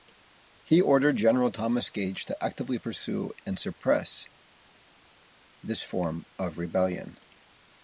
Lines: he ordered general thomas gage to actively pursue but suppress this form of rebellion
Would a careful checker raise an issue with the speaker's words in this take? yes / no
yes